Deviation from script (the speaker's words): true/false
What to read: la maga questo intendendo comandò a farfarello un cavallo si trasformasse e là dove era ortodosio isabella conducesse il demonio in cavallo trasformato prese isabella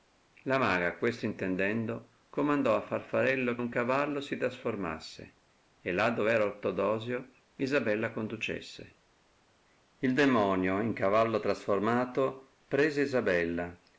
false